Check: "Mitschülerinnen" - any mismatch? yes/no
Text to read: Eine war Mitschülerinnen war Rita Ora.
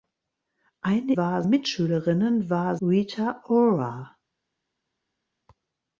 no